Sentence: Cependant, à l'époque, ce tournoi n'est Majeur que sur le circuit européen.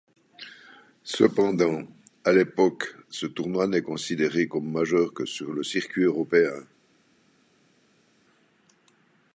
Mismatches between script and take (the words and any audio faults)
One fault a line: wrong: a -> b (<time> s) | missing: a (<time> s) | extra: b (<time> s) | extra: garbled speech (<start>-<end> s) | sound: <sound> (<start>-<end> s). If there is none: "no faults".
extra: considéré comme (3.8 s)